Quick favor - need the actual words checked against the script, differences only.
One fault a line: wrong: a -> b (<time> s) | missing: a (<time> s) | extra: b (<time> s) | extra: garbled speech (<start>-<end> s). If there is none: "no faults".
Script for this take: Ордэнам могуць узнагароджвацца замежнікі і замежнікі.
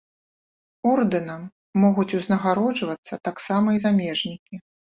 wrong: замежнікі -> таксама (3.3 s)